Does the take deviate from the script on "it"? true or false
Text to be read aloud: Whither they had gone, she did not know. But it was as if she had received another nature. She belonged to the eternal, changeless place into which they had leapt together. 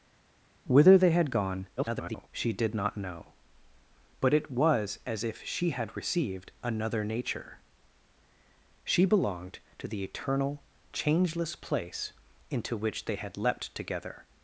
false